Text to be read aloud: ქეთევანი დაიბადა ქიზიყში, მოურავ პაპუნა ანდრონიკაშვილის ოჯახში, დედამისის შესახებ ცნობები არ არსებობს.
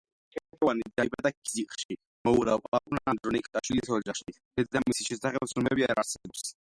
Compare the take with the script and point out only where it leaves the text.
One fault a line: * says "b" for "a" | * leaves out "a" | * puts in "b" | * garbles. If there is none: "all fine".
all fine